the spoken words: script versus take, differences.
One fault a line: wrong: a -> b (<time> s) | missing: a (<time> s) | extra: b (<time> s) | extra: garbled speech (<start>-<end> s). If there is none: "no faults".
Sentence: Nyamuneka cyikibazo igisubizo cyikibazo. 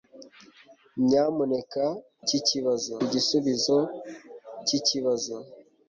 no faults